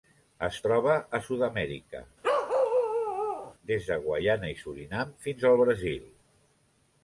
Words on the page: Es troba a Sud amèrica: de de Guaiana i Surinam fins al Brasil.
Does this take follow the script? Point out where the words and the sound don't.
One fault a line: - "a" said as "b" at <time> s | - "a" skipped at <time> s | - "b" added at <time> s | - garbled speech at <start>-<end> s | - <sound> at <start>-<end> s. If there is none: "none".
- bark at 2.2-3.5 s
- "de" said as "des" at 3.7 s